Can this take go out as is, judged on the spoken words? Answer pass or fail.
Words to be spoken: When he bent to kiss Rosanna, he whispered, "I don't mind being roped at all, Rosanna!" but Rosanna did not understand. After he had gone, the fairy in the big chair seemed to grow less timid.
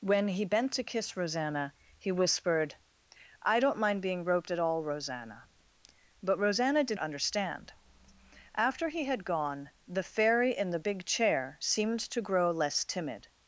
fail